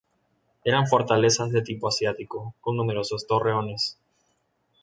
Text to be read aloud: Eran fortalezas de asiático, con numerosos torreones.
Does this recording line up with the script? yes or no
no